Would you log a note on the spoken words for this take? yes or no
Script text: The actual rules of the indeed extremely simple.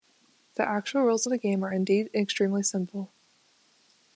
yes